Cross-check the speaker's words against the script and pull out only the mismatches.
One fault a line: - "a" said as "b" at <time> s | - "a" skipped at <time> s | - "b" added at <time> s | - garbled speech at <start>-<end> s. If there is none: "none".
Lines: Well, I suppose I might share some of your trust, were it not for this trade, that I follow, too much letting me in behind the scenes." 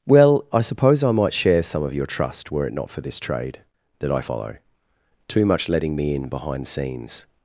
- "the" skipped at 6.7 s